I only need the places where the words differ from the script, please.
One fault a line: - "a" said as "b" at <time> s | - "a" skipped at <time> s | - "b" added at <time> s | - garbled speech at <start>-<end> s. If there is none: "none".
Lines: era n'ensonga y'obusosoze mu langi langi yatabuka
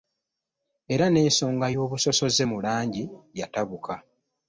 - "langi" skipped at 3.0 s